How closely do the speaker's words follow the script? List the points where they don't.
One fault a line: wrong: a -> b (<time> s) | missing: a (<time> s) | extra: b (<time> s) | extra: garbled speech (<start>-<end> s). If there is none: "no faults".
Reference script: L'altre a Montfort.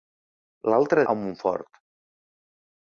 no faults